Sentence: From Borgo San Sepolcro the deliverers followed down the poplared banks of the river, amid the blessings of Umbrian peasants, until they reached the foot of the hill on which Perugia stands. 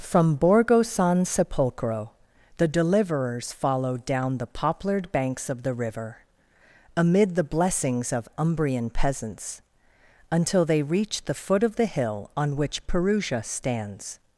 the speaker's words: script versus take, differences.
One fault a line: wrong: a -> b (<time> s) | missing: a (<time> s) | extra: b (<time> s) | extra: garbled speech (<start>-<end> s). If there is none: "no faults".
no faults